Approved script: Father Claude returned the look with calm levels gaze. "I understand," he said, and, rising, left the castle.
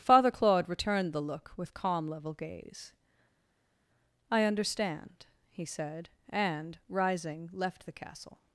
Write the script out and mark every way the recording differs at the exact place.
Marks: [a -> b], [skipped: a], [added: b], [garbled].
Father Claude returned the look with calm [levels -> level] gaze. "I understand," he said, and, rising, left the castle.